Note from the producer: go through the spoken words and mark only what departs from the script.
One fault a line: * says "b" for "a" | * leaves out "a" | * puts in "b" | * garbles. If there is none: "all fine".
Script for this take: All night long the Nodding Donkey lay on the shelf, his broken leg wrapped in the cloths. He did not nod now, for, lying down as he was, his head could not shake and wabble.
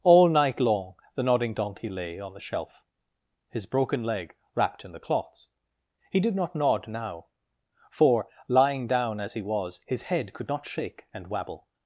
all fine